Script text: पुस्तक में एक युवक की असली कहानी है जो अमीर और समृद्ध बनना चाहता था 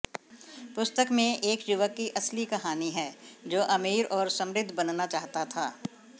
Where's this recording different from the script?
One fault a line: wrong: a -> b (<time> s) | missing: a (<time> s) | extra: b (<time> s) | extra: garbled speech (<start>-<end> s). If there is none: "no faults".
no faults